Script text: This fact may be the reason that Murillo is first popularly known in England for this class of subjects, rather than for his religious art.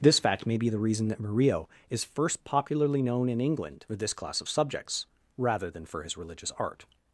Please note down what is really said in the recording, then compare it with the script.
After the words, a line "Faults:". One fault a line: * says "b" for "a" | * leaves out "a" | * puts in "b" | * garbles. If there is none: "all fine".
This fact may be the reason that Murillo is first popularly known in England for this class of subjects, rather than for his religious art.
Faults:
all fine